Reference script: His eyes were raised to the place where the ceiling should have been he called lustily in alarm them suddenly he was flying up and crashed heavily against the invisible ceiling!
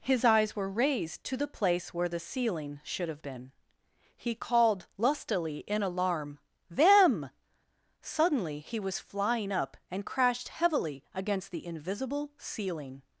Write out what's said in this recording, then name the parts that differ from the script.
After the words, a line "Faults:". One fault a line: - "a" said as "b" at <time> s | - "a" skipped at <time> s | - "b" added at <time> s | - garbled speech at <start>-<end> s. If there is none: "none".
His eyes were raised to the place where the ceiling should have been he called lustily in alarm them suddenly he was flying up and crashed heavily against the invisible ceiling!
Faults:
none